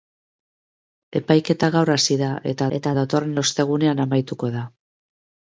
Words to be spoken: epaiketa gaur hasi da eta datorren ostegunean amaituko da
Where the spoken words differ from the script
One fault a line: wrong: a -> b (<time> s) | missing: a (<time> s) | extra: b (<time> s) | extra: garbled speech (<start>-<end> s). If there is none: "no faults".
extra: eta (2.8 s)